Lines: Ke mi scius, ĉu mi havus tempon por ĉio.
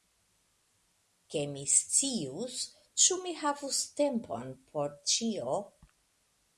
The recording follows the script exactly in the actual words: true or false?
true